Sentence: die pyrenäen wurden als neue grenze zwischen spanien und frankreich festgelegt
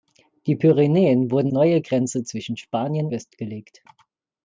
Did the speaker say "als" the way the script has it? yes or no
no